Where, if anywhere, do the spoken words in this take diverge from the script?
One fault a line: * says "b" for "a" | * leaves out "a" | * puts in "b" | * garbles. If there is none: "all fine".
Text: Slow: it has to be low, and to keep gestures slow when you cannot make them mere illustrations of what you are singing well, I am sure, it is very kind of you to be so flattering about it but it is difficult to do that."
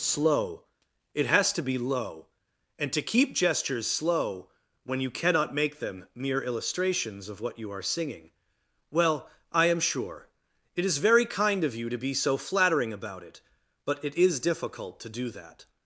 all fine